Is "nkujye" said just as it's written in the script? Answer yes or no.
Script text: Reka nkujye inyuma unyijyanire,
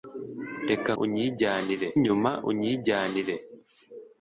no